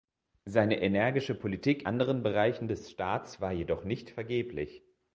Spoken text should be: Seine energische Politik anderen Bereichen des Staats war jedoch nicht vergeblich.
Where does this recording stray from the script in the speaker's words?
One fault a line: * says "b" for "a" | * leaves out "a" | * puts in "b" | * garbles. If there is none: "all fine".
all fine